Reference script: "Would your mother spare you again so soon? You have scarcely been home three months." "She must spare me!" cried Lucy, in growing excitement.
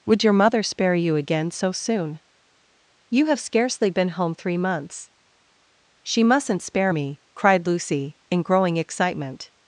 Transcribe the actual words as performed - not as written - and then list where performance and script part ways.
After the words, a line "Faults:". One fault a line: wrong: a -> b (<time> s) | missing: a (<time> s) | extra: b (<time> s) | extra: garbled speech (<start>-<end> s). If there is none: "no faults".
"Would your mother spare you again so soon? You have scarcely been home three months." "She mustn't spare me!" cried Lucy, in growing excitement.
Faults:
wrong: must -> mustn't (6.2 s)